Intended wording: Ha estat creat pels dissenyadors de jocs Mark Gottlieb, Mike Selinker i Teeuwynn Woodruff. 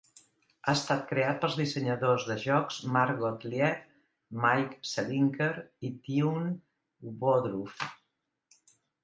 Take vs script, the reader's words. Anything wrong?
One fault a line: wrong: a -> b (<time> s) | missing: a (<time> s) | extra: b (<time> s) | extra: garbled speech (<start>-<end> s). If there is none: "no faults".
no faults